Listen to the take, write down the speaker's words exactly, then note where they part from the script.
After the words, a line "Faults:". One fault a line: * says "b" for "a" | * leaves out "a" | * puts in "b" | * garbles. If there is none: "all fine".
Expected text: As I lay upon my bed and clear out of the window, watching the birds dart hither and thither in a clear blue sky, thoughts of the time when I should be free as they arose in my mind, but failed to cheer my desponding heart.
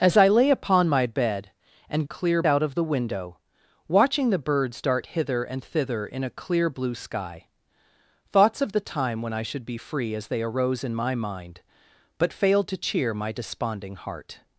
As I lay upon my bed and clear out of the window, watching the birds dart hither and thither in a clear blue sky, thoughts of the time when I should be free as they arose in my mind, but failed to cheer my desponding heart.
Faults:
all fine